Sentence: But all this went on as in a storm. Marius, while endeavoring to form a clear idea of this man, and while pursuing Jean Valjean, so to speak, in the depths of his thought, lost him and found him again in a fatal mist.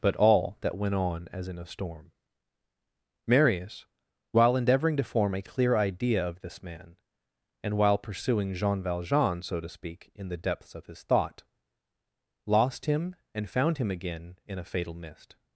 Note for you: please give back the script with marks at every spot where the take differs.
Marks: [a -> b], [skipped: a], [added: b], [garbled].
But all [this -> that] went on as in a storm. Marius, while endeavoring to form a clear idea of this man, and while pursuing Jean Valjean, so to speak, in the depths of his thought, lost him and found him again in a fatal mist.